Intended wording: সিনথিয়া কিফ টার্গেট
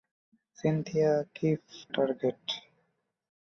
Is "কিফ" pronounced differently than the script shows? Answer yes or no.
no